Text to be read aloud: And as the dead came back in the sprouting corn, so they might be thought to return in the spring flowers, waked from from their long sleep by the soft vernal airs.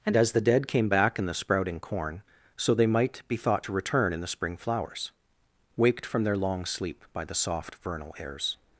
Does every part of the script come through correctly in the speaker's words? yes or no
no